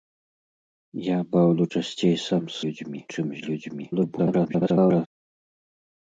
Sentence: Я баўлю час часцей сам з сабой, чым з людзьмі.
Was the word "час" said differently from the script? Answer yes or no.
yes